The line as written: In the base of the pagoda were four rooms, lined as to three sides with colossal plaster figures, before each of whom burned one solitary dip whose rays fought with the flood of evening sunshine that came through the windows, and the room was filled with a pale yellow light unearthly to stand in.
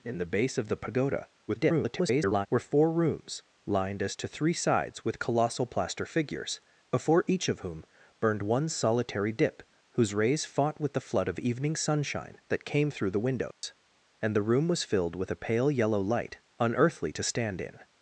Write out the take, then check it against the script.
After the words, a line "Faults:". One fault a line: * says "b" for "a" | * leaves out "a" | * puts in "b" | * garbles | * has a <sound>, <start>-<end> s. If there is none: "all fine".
In the base of the pagoda [garbled] were four rooms, lined as to three sides with colossal plaster figures, before each of whom burned one solitary dip whose rays fought with the flood of evening sunshine that came through the windows, and the room was filled with a pale yellow light unearthly to stand in.
Faults:
* garbles
* has a dropout, 13.5-13.6 s